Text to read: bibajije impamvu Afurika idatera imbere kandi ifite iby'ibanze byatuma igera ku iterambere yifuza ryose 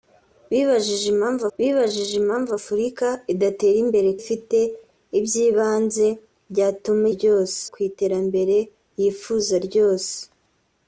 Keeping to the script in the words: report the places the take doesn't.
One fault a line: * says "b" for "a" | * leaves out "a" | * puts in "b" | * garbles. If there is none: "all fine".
* puts in "bibajije impamvu"
* leaves out "kandi"
* says "ryose" for "igera"